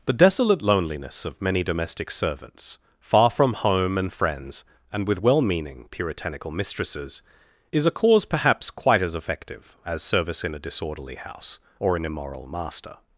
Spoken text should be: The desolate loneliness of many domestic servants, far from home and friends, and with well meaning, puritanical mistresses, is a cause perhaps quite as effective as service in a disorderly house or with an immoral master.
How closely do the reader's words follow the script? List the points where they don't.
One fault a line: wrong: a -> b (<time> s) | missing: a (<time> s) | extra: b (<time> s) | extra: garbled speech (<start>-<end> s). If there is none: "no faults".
missing: with (12.0 s)